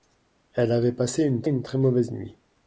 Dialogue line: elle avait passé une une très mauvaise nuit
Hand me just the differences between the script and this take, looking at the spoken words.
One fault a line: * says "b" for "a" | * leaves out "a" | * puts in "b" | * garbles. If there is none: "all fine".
all fine